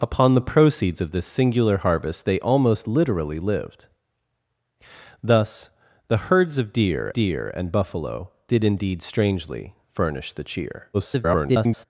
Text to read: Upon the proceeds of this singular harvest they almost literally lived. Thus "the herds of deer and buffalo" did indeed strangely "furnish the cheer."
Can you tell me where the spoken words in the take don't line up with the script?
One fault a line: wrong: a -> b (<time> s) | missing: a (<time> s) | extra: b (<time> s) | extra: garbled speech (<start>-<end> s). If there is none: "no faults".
extra: deer (7.1 s)
extra: garbled speech (10.9-11.8 s)